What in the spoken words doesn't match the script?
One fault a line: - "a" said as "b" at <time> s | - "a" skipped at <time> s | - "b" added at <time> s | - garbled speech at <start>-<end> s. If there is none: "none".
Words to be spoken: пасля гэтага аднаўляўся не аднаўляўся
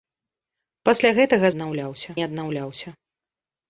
none